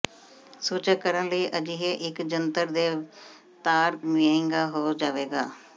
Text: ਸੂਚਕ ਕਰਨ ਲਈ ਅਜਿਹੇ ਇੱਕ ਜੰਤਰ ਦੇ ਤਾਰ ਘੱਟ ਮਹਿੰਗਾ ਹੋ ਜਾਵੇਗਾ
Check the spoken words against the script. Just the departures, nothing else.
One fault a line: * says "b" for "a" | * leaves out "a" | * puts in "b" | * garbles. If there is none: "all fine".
* leaves out "ਘੱਟ"